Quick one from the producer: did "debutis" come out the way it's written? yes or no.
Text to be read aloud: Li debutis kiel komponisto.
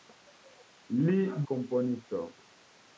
no